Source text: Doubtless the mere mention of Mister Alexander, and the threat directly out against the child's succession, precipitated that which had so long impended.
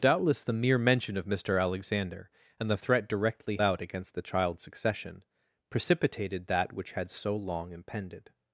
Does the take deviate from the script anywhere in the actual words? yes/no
no